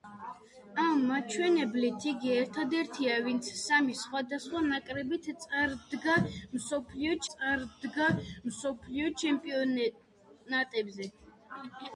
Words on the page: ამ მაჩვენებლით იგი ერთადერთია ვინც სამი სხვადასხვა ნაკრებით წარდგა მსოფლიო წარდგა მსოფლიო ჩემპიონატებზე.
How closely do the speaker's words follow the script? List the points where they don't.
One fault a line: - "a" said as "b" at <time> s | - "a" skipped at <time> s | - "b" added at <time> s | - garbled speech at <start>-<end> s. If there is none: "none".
none